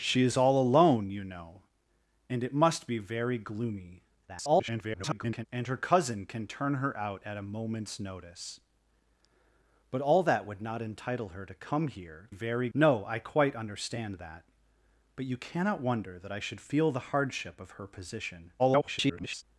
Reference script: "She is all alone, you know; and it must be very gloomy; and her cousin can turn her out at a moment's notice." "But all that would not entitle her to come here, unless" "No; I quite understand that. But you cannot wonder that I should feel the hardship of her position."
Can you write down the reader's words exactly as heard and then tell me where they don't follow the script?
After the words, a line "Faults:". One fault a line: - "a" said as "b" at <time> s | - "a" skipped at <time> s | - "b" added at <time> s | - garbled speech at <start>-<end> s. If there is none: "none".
"She is all alone, you know; and it must be very gloomy; [garbled] and her cousin can turn her out at a moment's notice." "But all that would not entitle her to come here, very" "No; I quite understand that. But you cannot wonder that I should feel the hardship of her position." [garbled]
Faults:
- garbled speech at 4.3-5.5 s
- "unless" said as "very" at 12.3 s
- garbled speech at 18.6-19.4 s